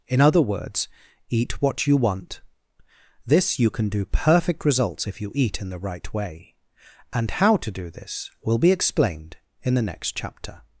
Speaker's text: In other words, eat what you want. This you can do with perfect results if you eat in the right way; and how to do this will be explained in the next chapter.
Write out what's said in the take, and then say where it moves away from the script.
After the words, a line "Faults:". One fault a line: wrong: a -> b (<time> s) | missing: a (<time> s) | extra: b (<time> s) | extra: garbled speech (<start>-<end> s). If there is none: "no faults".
In other words, eat what you want. This you can do perfect results if you eat in the right way; and how to do this will be explained in the next chapter.
Faults:
missing: with (4.0 s)